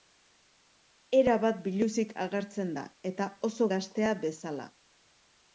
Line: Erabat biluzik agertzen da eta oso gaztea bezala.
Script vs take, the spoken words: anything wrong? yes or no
no